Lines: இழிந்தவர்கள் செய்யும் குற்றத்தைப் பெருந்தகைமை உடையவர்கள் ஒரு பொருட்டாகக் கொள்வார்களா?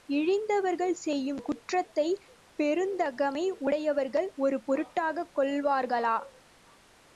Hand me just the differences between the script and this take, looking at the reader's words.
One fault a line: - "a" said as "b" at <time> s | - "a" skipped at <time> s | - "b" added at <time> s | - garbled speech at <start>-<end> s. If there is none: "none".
none